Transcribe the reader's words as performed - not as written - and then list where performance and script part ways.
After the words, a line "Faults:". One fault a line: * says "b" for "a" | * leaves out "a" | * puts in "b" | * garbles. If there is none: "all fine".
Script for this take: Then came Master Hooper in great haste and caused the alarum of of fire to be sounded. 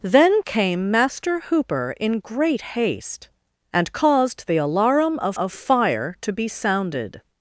Then came Master Hooper in great haste and caused the alarum of of fire to be sounded.
Faults:
all fine